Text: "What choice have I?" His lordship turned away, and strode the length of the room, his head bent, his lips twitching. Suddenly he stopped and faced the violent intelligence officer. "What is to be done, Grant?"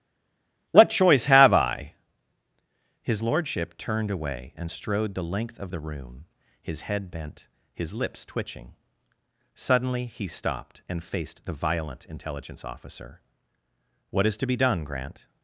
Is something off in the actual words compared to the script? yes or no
no